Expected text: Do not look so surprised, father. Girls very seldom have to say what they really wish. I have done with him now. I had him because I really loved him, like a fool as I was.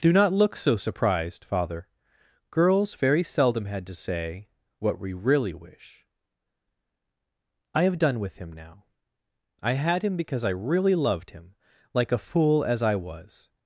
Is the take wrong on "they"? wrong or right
wrong